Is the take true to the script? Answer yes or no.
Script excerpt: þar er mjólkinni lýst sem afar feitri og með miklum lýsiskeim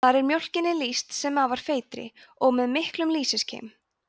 yes